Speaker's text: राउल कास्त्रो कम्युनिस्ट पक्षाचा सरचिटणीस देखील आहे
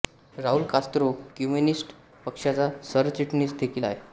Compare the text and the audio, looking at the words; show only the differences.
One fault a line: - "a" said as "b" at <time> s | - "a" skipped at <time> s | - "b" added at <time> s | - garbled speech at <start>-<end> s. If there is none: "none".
none